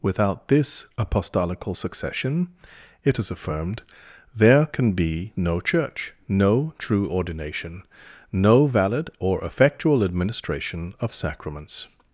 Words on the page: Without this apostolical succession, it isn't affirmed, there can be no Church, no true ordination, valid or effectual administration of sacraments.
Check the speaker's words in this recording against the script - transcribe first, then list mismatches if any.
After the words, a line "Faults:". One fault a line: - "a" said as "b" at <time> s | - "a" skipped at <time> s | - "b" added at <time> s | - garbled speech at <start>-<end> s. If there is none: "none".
Without this apostolical succession, it is affirmed, there can be no Church, no true ordination, no valid or effectual administration of sacraments.
Faults:
- "isn't" said as "is" at 3.2 s
- "no" added at 8.3 s